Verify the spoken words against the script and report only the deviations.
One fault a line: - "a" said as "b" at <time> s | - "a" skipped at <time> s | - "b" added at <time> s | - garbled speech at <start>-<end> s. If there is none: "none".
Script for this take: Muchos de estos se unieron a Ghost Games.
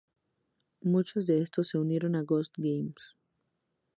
none